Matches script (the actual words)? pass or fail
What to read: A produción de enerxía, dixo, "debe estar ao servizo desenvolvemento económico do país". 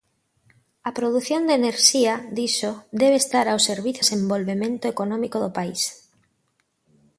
pass